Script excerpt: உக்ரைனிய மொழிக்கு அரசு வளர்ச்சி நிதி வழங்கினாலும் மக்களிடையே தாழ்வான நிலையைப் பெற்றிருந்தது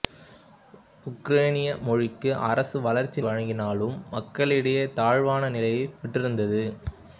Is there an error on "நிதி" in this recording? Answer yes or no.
yes